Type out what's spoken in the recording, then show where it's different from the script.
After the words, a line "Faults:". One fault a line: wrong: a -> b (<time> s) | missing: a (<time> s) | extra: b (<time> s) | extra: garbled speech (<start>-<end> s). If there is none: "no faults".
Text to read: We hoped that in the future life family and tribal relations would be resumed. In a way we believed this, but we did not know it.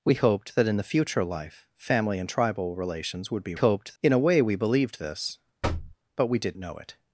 We hoped that in the future life family and tribal relations would be hoped. In a way we believed this, but we did know it.
Faults:
wrong: resumed -> hoped (3.5 s)
missing: not (6.6 s)